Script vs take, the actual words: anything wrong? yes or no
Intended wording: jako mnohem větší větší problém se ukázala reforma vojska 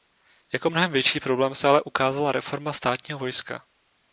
yes